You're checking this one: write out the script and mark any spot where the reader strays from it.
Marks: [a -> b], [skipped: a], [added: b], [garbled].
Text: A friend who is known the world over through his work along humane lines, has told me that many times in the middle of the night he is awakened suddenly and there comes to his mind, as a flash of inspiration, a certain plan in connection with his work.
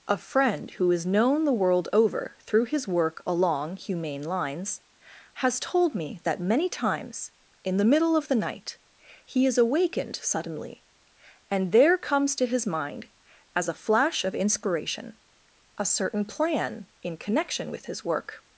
A friend who is known the world over through his work along humane lines, has told me that many times in the middle of the night he is awakened suddenly and there comes to his mind, as a flash of inspiration, a certain plan in connection with his work.